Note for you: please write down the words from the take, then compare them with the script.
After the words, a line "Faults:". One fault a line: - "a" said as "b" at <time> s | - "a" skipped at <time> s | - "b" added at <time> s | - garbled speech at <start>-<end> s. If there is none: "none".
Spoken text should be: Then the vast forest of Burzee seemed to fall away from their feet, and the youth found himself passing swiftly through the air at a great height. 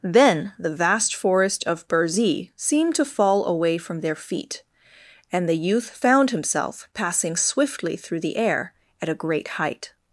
Then the vast forest of Burzee seemed to fall away from their feet, and the youth found himself passing swiftly through the air at a great height.
Faults:
none